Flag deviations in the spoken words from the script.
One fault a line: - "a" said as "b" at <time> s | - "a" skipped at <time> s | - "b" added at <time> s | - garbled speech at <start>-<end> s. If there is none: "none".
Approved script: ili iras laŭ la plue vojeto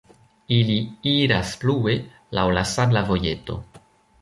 - "plue" added at 1.7 s
- "plue" said as "sabla" at 2.7 s